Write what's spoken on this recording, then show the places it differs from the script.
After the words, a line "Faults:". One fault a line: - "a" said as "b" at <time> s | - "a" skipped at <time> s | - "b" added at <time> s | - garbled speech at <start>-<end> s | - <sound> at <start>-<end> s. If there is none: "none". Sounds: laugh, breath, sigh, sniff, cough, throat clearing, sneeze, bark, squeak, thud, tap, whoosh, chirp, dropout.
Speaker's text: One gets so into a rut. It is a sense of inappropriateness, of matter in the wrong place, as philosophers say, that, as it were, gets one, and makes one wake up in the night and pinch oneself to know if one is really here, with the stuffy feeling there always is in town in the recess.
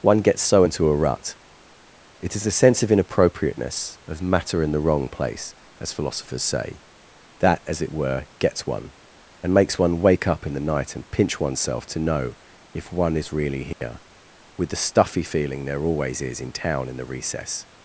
One gets so into a rut. It is a sense of inappropriateness, of matter in the wrong place, as philosophers say, that, as it were, gets one, and makes one wake up in the night and pinch oneself to know if one is really here, with the stuffy feeling there always is in town in the recess.
Faults:
- dropout at 13.7-13.8 s